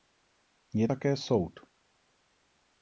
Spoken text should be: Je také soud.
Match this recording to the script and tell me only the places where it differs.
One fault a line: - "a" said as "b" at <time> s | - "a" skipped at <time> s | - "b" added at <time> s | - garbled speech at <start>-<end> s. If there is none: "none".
none